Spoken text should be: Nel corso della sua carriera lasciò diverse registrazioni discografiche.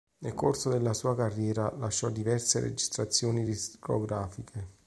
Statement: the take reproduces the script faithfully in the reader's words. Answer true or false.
true